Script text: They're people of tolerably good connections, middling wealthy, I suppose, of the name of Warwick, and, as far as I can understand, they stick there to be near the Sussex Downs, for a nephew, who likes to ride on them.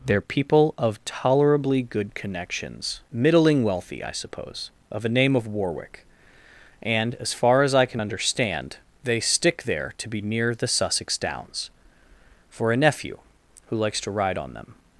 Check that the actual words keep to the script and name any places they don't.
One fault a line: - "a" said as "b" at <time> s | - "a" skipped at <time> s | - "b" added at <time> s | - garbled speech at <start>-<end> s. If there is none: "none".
- "the" said as "a" at 5.0 s